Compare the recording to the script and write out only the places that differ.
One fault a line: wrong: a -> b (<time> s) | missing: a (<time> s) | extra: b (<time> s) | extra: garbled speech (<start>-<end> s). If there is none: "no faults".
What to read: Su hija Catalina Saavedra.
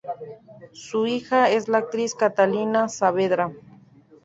extra: es la actriz (1.5 s)